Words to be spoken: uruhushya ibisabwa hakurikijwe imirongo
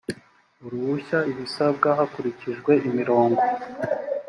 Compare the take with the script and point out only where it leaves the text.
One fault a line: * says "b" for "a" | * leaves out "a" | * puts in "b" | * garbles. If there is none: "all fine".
all fine